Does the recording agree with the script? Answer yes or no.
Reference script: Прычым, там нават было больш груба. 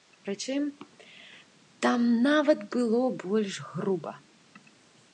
yes